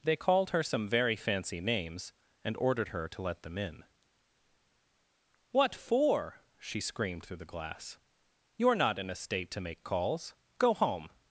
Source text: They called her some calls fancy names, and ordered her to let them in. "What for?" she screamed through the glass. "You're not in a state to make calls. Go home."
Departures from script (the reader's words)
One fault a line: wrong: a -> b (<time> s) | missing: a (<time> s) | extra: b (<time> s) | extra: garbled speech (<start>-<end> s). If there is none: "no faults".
wrong: calls -> very (0.9 s)